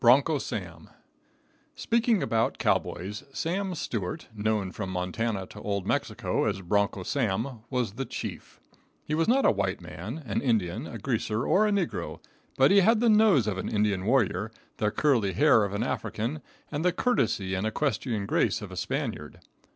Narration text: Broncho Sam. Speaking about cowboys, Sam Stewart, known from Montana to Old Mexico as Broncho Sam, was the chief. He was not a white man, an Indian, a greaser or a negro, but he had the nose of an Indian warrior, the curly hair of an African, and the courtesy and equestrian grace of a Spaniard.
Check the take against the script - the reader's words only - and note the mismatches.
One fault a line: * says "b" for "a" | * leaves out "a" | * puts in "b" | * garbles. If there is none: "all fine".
all fine